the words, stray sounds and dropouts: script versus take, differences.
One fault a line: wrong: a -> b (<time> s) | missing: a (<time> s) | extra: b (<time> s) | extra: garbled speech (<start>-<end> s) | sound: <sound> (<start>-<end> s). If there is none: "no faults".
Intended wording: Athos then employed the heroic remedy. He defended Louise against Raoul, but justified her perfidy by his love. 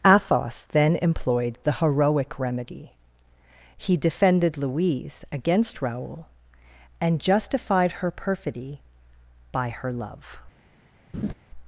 wrong: but -> and (7.0 s)
wrong: his -> her (9.7 s)
sound: laugh (11.1-11.3 s)